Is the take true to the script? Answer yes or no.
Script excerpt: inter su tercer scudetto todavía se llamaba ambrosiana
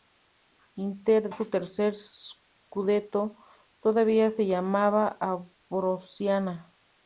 yes